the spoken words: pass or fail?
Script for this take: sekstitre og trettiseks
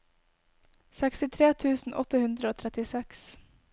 fail